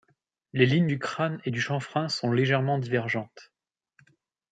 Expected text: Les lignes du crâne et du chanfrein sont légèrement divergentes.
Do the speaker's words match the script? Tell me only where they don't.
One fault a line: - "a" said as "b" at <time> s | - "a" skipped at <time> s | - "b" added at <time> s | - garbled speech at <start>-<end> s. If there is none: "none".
none